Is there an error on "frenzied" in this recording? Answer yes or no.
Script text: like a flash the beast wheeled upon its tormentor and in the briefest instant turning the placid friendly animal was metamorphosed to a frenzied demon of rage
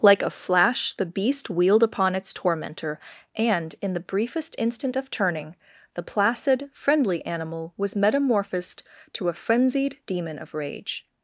no